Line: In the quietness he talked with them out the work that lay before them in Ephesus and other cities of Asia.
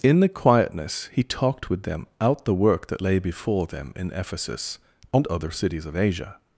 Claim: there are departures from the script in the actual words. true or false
false